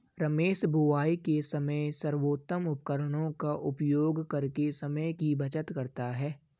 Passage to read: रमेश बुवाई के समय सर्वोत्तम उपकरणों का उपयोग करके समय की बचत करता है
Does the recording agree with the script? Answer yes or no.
yes